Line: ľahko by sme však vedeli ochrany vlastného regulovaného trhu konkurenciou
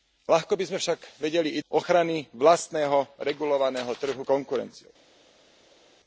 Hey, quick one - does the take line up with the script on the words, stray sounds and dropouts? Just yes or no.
yes